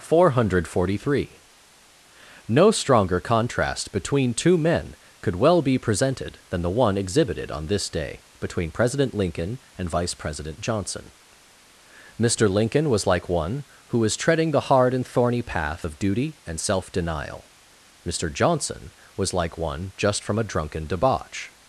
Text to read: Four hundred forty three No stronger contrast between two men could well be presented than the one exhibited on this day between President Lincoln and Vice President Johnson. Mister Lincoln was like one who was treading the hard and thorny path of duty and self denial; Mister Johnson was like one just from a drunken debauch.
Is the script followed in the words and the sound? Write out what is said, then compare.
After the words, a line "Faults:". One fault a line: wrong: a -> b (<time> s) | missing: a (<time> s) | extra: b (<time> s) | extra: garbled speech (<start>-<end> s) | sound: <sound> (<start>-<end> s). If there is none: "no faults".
Four hundred forty three No stronger contrast between two men could well be presented than the one exhibited on this day between President Lincoln and Vice President Johnson. Mister Lincoln was like one who was treading the hard and thorny path of duty and self denial; Mister Johnson was like one just from a drunken debauch.
Faults:
no faults